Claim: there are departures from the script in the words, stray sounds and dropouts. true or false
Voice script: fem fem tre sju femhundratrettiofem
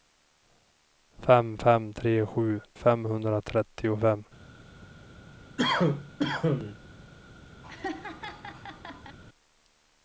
true